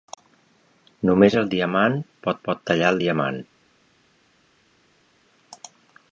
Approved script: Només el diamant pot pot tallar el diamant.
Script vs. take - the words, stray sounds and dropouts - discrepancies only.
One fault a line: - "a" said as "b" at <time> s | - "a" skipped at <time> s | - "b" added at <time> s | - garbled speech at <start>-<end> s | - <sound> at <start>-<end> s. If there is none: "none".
none